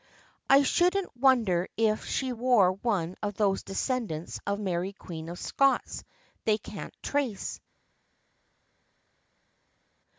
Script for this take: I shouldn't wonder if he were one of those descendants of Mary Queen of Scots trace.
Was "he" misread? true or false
true